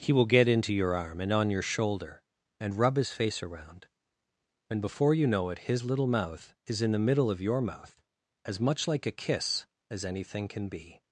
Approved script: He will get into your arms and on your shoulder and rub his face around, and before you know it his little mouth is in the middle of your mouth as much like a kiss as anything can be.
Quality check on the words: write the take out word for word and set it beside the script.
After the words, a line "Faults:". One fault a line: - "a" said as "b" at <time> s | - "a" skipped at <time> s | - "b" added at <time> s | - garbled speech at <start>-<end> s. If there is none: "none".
He will get into your arm and on your shoulder and rub his face around, and before you know it his little mouth is in the middle of your mouth as much like a kiss as anything can be.
Faults:
- "arms" said as "arm" at 0.9 s